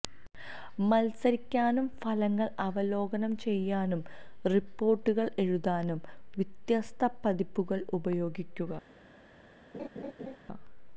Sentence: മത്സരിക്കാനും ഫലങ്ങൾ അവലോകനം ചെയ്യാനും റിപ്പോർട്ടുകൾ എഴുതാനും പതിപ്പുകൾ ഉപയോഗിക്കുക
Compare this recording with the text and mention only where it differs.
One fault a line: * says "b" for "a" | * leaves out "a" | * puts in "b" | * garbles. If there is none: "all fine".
* puts in "വ്യത്യസ്ത"